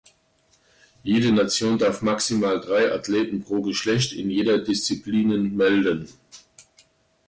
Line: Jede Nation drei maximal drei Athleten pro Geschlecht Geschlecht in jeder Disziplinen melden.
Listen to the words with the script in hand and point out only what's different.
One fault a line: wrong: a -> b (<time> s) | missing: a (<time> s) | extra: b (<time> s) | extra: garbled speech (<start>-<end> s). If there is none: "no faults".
wrong: drei -> darf (1.8 s)
missing: Geschlecht (4.1 s)